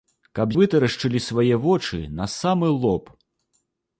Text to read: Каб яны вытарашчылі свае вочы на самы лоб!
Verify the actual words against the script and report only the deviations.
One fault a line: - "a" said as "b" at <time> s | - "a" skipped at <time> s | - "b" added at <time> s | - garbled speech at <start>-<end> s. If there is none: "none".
- "яны" skipped at 0.5 s